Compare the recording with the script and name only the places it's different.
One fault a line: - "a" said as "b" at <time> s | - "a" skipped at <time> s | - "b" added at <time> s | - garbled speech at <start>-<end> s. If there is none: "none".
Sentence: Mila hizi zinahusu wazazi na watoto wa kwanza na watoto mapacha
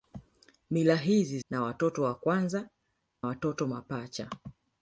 - "zinahusu wazazi" skipped at 1.4 s
- "na" skipped at 2.7 s